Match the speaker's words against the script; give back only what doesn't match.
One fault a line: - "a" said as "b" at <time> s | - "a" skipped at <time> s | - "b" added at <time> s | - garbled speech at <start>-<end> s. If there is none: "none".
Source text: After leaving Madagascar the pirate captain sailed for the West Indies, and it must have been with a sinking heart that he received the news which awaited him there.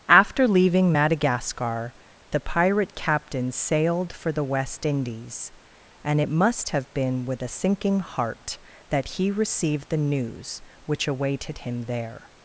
none